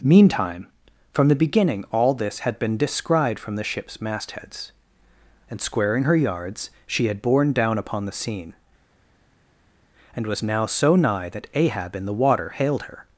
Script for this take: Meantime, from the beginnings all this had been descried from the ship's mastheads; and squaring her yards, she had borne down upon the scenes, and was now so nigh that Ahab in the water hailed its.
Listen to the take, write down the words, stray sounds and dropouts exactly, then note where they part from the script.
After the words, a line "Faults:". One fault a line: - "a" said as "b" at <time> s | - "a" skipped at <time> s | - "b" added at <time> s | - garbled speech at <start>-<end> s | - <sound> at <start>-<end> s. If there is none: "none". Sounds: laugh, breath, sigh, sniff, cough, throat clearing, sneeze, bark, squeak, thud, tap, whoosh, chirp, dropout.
Meantime, from the beginning all this had been descried from the ship's mastheads; and squaring her yards, she had borne down upon the scene, and was now so nigh that Ahab in the water hailed her.
Faults:
- "beginnings" said as "beginning" at 1.4 s
- "scenes" said as "scene" at 8.2 s
- "its" said as "her" at 12.8 s